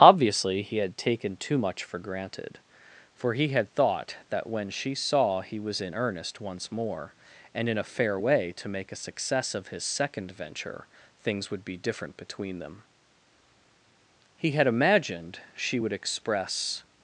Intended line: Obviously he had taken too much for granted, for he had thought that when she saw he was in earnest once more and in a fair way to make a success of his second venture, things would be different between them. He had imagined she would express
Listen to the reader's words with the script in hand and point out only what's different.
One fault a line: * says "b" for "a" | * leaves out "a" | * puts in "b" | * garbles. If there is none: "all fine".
all fine